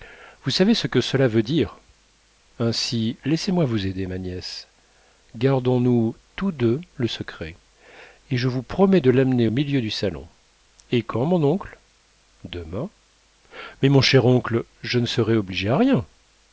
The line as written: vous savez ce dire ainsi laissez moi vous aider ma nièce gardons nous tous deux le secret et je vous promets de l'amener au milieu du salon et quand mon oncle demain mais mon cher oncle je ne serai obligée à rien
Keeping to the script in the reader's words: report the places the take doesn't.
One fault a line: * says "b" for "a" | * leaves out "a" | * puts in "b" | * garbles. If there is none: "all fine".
* puts in "que cela veut"